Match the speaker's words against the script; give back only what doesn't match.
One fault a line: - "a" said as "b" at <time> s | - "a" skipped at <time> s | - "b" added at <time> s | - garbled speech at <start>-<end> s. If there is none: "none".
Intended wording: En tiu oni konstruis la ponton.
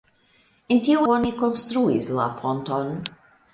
none